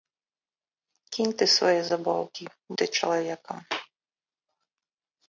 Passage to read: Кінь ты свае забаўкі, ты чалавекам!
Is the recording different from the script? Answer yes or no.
no